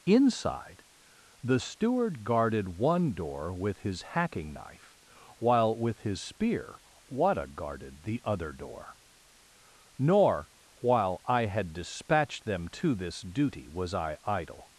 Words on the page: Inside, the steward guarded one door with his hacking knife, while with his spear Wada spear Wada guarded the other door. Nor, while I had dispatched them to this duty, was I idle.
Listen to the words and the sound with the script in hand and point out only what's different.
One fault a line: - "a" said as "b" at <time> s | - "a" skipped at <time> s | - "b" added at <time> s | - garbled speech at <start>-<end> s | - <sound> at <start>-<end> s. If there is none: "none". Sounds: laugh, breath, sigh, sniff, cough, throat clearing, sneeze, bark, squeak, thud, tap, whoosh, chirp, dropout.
- "spear Wada" skipped at 7.5 s